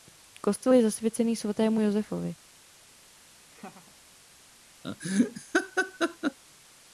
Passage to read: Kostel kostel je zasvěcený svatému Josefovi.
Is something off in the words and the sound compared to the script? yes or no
yes